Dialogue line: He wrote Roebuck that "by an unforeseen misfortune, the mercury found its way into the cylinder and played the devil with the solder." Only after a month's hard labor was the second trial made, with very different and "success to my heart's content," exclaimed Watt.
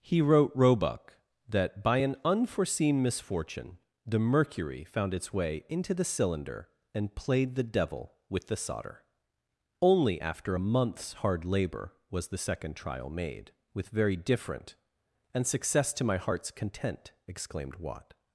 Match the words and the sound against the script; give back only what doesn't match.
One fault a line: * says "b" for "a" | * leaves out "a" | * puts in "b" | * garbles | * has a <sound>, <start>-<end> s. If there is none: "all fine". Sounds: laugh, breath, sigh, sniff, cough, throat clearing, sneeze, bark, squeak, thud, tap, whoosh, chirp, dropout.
all fine